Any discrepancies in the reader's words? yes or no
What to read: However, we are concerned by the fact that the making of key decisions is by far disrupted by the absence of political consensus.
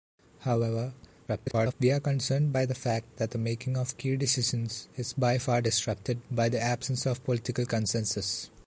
yes